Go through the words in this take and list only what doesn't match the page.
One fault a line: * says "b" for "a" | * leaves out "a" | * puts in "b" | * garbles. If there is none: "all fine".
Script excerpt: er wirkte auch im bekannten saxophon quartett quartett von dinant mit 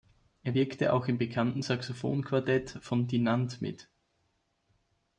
* leaves out "quartett"